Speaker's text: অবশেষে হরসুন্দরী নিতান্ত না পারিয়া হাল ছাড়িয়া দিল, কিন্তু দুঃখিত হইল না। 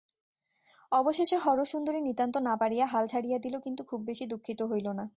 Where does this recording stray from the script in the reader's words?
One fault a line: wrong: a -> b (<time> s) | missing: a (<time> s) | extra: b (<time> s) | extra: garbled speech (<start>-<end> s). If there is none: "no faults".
extra: খুব বেশি (3.8 s)